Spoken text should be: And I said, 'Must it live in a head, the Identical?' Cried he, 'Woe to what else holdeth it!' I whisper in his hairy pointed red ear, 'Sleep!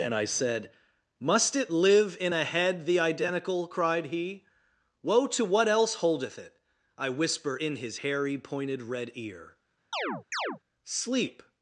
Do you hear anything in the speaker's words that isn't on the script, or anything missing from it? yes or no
no